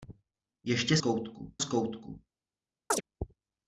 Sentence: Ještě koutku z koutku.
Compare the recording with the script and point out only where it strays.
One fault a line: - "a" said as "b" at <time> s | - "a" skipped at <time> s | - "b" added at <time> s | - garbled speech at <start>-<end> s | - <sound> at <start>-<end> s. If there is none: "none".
- chirp at 2.9-3.0 s